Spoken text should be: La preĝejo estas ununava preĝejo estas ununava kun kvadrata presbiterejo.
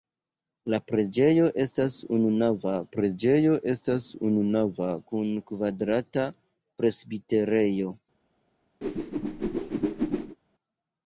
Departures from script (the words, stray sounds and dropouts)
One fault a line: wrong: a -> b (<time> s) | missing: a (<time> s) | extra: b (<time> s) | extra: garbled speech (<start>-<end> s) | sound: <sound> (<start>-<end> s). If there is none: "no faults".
sound: whoosh (8.8-10.4 s)